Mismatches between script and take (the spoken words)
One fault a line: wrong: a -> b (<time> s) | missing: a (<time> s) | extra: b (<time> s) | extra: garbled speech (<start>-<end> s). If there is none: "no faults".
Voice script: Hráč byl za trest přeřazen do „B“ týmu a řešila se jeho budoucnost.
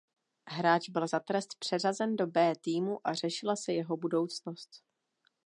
no faults